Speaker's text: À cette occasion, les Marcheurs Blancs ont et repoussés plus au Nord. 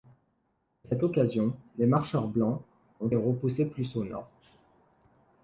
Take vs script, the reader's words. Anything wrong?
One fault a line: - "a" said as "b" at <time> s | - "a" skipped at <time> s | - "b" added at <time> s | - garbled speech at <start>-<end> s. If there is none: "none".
none